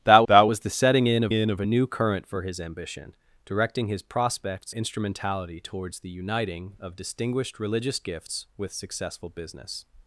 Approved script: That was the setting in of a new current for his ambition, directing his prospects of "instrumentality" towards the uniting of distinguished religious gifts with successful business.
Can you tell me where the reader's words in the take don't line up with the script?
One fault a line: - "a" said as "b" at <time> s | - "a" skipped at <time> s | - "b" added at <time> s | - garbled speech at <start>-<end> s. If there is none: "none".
- "that" added at 0.2 s
- "in of" added at 1.3 s
- "of" skipped at 4.7 s